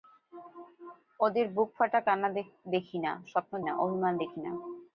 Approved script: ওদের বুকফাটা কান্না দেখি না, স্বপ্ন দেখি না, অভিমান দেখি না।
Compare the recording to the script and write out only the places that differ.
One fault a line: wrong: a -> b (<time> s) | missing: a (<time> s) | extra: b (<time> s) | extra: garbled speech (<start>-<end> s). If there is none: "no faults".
missing: দেখি (3.5 s)